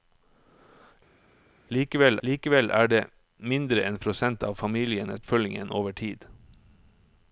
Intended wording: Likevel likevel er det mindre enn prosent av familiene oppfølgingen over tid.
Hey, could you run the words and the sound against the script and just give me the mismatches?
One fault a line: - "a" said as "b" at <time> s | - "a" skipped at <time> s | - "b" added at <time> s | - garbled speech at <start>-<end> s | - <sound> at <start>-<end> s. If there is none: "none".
none